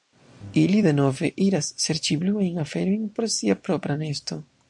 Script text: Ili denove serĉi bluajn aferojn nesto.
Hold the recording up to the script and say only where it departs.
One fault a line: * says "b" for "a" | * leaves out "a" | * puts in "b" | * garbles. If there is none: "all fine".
* puts in "iras"
* puts in "por sia propra"